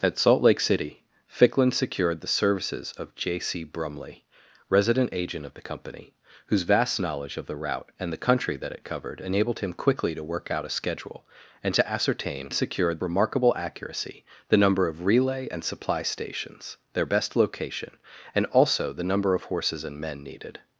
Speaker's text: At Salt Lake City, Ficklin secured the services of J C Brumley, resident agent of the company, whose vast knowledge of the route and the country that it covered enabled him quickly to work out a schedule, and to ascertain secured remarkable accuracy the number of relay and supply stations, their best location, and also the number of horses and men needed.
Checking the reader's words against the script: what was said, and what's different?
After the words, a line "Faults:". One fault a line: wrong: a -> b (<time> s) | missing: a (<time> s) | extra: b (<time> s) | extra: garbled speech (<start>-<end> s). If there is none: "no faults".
At Salt Lake City, Ficklin secured the services of J C Brumley, resident agent of the company, whose vast knowledge of the route and the country that it covered enabled him quickly to work out a schedule, and to ascertain secured remarkable accuracy the number of relay and supply stations, their best location, and also the number of horses and men needed.
Faults:
no faults